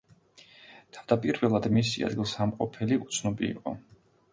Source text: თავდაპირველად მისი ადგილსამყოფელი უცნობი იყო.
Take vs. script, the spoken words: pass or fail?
pass